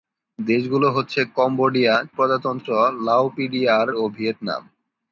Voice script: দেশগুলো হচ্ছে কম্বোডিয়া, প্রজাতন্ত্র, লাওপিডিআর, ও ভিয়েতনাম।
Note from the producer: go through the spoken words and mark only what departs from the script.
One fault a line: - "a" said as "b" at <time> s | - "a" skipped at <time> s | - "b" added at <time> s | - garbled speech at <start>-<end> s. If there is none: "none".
none